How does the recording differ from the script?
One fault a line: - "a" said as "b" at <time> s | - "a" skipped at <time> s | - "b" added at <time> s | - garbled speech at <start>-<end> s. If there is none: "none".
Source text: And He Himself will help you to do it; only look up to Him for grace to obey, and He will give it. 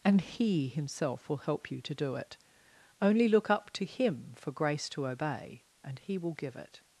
none